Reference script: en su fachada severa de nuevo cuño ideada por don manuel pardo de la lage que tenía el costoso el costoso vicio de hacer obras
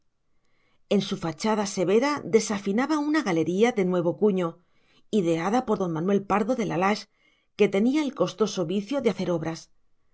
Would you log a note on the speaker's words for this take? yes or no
yes